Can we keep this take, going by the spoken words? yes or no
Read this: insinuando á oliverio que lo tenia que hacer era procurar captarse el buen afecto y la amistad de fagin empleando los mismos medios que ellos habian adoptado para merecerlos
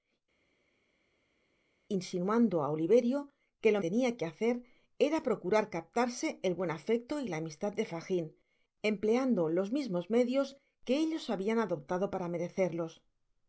yes